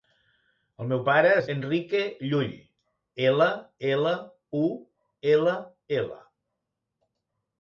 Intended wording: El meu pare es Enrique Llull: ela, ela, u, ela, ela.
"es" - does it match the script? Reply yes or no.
yes